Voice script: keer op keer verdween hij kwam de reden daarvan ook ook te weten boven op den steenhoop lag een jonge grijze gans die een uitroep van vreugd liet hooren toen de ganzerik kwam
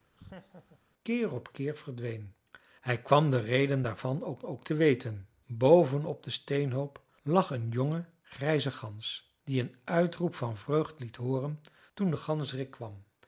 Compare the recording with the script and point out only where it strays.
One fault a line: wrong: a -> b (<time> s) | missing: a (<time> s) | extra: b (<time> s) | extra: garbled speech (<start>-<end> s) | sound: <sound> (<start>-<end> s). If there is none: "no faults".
sound: laugh (0.2-0.8 s)